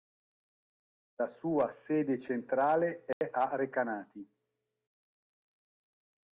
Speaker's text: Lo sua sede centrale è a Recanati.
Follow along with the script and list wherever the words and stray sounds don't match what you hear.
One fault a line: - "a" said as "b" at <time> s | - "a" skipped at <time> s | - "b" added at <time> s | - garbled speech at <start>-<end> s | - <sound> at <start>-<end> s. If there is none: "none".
- "Lo" said as "La" at 1.2 s
- dropout at 3.1-3.2 s